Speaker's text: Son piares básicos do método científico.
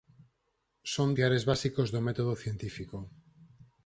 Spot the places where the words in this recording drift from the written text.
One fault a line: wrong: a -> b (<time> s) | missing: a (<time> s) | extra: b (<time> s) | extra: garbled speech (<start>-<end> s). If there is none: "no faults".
no faults